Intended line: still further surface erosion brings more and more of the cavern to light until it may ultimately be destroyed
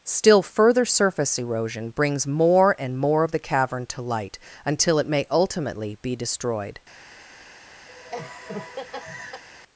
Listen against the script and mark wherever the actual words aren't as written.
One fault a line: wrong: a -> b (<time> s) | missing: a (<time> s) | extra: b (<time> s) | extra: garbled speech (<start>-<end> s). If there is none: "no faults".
no faults